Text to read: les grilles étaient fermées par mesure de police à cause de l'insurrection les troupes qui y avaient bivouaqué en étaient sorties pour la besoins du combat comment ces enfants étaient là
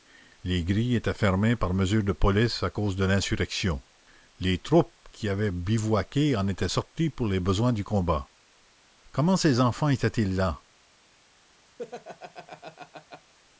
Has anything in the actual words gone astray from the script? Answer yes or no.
yes